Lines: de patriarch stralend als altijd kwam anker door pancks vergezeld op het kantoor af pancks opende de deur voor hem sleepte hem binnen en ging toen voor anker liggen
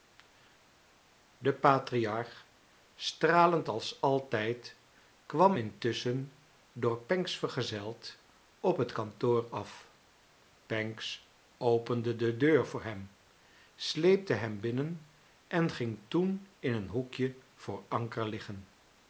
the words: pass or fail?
fail